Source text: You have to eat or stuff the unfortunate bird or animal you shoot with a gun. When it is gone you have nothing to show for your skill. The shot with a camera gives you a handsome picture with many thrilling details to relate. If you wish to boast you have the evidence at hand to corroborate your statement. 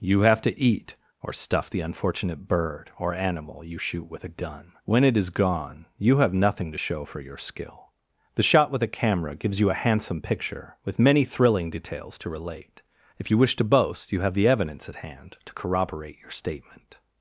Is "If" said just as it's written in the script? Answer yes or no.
yes